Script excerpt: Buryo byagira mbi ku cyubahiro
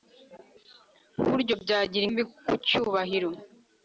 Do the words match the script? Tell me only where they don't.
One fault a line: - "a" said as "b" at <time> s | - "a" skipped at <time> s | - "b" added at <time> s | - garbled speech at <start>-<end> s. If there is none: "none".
none